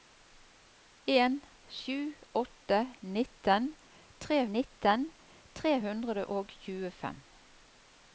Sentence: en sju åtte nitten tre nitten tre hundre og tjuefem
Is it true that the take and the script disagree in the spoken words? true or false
false